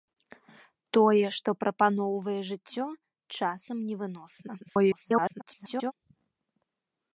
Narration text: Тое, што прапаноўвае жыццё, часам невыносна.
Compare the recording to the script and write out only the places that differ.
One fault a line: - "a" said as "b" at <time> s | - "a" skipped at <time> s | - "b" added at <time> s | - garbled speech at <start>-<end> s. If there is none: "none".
- garbled speech at 4.6-5.9 s